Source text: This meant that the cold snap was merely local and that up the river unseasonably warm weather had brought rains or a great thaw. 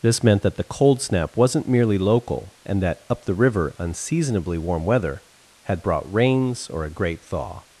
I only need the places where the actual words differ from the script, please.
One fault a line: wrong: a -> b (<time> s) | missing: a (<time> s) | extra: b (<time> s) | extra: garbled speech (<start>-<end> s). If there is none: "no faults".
wrong: was -> wasn't (1.4 s)